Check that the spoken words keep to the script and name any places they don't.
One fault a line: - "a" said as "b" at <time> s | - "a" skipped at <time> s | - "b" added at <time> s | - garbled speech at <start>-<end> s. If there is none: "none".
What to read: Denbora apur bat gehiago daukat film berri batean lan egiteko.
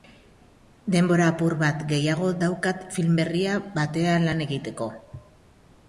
none